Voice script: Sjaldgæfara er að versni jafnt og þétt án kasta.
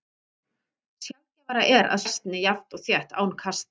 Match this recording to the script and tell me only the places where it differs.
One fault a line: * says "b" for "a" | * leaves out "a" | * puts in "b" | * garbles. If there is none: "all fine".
all fine